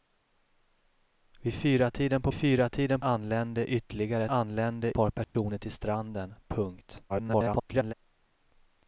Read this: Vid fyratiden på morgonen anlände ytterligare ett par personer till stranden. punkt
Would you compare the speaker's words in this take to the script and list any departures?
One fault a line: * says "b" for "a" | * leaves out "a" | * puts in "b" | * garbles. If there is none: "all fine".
* says "fyratiden" for "morgonen"
* says "anlände" for "ett"
* garbles